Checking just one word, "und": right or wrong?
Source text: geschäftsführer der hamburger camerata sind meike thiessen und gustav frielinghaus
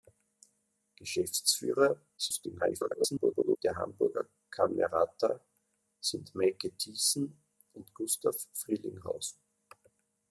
right